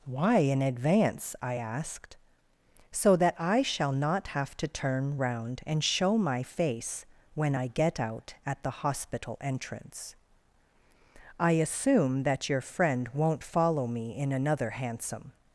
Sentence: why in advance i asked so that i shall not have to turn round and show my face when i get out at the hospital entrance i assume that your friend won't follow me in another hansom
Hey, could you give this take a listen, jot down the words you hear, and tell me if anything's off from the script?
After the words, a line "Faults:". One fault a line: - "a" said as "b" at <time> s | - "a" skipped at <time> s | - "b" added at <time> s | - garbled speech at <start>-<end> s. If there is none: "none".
why in advance i asked so that i shall not have to turn round and show my face when i get out at the hospital entrance i assume that your friend won't follow me in another hansom
Faults:
none